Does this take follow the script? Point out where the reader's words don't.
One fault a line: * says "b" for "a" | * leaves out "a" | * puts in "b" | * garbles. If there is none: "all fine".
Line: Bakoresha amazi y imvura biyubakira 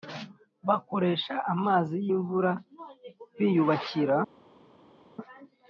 all fine